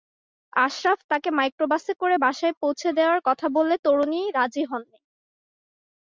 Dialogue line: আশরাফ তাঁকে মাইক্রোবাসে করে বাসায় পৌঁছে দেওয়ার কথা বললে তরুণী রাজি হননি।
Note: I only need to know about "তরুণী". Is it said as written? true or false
true